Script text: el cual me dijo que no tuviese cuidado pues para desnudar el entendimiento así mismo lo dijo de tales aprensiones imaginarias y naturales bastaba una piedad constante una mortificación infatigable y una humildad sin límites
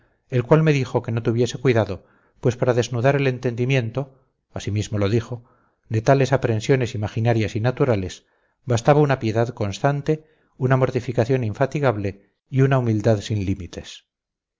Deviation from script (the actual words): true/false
false